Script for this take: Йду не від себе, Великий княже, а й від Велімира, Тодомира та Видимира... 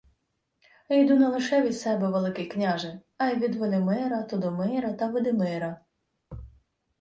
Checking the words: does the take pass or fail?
fail